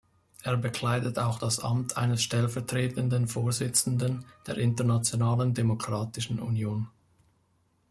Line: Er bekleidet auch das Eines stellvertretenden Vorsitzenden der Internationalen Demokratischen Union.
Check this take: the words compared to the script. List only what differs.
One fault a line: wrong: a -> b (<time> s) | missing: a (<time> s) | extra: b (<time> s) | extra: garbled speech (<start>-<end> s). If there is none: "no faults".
extra: Amt (1.6 s)